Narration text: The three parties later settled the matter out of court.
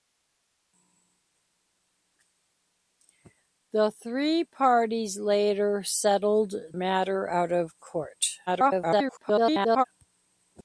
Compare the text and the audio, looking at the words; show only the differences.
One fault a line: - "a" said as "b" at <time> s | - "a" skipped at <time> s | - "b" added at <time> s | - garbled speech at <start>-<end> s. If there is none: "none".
- "the" skipped at 6.5 s
- garbled speech at 8.5-9.8 s